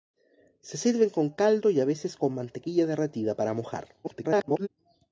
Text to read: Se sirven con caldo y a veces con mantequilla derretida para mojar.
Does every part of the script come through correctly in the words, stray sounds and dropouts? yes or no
no